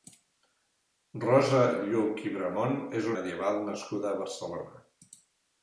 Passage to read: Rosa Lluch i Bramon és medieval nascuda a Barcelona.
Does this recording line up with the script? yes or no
yes